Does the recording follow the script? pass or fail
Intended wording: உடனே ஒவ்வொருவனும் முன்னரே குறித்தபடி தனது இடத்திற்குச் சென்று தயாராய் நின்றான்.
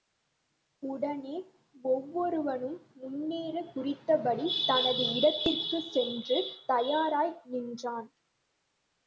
pass